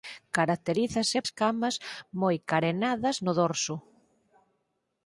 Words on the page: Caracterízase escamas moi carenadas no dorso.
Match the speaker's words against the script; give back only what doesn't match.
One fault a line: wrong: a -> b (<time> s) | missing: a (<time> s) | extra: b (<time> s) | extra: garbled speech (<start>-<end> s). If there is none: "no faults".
no faults